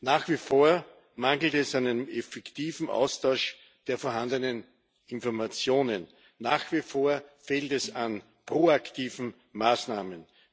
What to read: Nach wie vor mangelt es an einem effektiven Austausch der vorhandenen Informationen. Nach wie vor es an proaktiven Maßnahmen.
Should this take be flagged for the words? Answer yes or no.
yes